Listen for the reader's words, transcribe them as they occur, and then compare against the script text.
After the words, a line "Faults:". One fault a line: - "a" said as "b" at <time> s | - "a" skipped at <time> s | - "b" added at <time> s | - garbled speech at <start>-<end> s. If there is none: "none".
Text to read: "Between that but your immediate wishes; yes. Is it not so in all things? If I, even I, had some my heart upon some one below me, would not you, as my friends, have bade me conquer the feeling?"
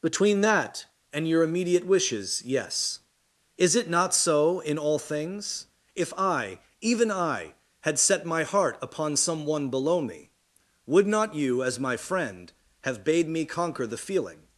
"Between that and your immediate wishes; yes. Is it not so in all things? If I, even I, had set my heart upon some one below me, would not you, as my friend, have bade me conquer the feeling?"
Faults:
- "but" said as "and" at 1.1 s
- "some" said as "set" at 8.0 s
- "friends" said as "friend" at 12.0 s